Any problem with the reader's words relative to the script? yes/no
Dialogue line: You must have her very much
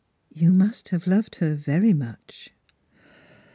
yes